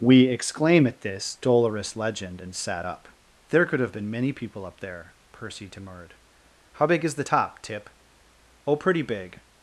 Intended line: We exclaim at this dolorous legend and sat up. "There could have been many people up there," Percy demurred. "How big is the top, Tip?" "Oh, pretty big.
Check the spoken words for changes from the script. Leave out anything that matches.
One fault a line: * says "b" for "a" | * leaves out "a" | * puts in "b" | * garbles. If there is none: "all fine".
all fine